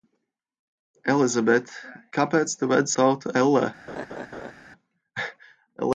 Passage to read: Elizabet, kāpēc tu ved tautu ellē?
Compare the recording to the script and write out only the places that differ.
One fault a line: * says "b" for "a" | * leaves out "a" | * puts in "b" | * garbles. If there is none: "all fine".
all fine